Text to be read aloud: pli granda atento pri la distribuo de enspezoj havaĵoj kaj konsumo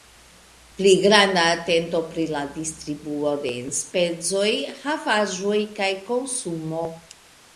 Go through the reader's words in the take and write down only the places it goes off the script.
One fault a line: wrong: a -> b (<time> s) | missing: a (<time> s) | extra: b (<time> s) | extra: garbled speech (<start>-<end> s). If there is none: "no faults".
no faults